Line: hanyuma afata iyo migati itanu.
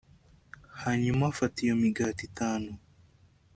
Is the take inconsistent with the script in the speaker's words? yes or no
no